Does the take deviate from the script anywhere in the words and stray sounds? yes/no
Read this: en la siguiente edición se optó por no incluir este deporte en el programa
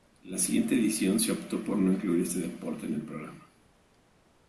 no